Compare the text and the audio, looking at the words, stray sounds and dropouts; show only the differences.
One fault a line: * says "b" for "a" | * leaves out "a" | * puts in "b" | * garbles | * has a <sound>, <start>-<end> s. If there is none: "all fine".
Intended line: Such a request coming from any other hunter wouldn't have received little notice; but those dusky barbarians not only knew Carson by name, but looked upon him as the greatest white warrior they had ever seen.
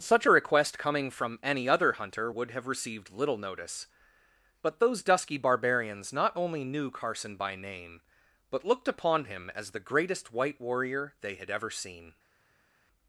* says "would" for "wouldn't"